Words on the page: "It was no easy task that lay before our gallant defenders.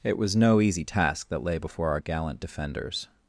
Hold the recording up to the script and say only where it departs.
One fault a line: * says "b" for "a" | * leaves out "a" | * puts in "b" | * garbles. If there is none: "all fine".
all fine